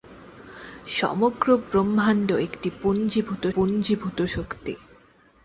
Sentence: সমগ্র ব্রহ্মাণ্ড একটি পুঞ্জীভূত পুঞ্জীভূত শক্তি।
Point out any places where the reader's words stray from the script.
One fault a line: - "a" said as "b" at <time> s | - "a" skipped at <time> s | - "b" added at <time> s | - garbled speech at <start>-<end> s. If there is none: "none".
none